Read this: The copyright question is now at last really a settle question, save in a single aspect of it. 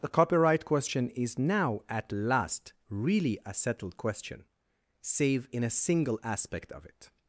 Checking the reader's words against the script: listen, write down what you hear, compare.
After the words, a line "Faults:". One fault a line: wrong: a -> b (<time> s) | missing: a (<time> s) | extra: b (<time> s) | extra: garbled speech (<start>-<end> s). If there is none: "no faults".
The copyright question is now at last really a settled question, save in a single aspect of it.
Faults:
wrong: settle -> settled (3.5 s)